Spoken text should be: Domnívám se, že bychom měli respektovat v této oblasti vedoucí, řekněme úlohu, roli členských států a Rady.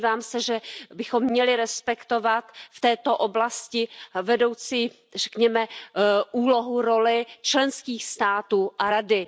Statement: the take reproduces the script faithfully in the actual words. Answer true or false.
true